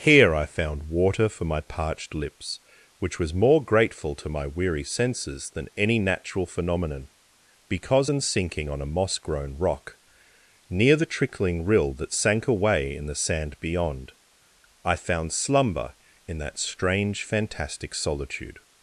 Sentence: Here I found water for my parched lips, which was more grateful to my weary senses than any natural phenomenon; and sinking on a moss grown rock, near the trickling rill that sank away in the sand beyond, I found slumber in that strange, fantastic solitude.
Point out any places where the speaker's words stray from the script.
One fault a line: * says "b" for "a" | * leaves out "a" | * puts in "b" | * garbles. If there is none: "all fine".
* says "because in" for "and"